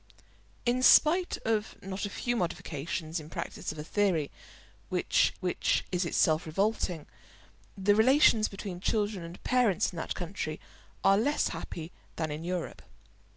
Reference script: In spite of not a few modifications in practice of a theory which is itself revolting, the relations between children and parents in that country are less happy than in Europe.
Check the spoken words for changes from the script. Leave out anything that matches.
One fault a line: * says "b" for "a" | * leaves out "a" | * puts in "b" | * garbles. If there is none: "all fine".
* puts in "which"